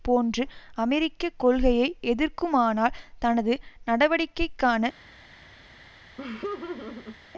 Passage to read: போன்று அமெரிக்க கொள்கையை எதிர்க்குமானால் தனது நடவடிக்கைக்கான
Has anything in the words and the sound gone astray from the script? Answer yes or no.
yes